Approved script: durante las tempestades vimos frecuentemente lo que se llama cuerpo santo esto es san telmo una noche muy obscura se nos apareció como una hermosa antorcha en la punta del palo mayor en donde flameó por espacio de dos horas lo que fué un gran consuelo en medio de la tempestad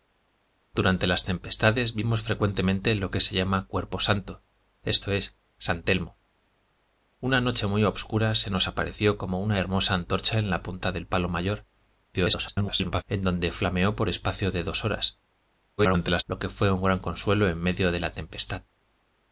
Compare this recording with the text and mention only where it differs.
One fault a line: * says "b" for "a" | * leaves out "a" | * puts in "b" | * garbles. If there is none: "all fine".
* garbles
* garbles